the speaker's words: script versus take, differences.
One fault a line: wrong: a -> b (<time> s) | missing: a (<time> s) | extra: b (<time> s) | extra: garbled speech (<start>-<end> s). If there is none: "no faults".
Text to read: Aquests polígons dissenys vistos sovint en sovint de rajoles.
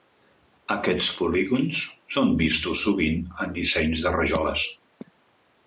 wrong: dissenys -> són (2.2 s)
wrong: sovint -> dissenys (3.6 s)